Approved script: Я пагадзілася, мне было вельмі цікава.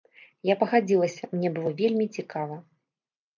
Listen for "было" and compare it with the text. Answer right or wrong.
right